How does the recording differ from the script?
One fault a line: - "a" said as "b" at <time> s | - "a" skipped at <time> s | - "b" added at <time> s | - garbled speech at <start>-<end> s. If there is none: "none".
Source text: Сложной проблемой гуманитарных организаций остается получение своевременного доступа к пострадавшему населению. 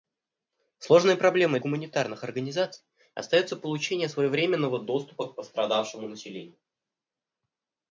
none